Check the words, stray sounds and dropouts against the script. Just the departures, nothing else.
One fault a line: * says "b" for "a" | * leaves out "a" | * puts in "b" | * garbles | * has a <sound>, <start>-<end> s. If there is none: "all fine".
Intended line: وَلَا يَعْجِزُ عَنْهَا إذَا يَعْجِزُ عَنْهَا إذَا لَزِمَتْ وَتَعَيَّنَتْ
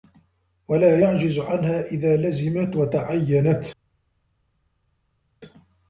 * leaves out "يَعْجِزُ عَنْهَا إذَا"